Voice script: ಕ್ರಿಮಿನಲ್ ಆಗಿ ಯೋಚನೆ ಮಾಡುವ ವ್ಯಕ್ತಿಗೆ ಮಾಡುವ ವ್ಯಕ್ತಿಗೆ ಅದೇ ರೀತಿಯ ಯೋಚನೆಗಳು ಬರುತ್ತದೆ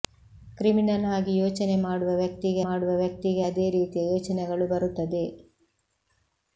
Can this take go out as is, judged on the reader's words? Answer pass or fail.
pass